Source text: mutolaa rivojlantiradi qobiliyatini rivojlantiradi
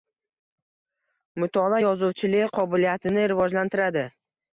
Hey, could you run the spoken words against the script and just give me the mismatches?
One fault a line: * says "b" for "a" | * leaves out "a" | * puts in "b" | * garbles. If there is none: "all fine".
* says "yozuvchilik" for "rivojlantiradi"